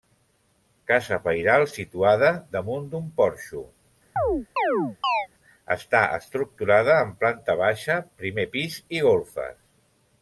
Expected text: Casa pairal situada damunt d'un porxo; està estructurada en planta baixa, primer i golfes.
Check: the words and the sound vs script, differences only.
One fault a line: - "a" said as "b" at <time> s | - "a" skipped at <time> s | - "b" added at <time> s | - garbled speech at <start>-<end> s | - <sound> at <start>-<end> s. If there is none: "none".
- chirp at 4.2-5.3 s
- "pis" added at 8.6 s